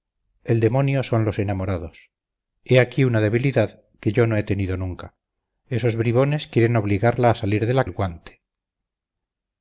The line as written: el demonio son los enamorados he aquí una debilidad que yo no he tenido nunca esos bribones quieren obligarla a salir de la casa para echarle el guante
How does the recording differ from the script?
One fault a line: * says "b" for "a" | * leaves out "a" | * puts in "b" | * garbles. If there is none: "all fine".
* leaves out "casa para echarle"